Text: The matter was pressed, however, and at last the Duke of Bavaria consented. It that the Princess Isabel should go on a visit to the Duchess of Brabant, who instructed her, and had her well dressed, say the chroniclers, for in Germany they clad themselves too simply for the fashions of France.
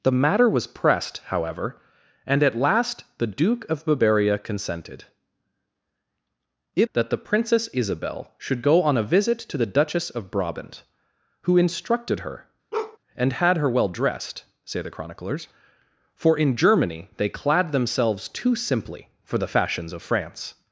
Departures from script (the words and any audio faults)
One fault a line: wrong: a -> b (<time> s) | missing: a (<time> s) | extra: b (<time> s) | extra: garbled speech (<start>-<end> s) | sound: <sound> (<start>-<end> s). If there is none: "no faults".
sound: bark (12.7-13.0 s)